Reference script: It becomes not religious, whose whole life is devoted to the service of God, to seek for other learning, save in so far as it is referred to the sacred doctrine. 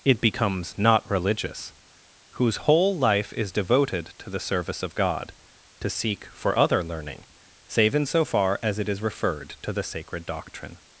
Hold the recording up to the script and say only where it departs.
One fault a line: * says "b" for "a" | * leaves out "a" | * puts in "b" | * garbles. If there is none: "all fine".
all fine